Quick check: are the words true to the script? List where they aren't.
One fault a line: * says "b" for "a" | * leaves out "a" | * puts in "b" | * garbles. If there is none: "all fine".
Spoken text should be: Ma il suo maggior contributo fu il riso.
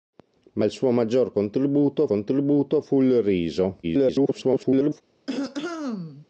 * puts in "contributo"
* garbles